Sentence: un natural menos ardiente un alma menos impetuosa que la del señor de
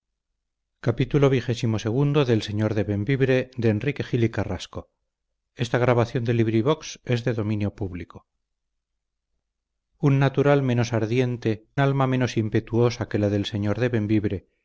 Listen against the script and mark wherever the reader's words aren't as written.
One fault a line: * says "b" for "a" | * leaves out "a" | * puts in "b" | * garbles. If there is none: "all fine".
* leaves out "un"